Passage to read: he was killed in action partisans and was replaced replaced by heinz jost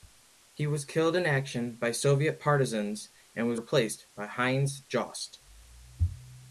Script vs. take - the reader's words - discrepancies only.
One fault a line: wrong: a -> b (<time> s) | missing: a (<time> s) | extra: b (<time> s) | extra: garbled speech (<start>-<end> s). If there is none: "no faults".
extra: by soviet (1.8 s)
missing: replaced (4.1 s)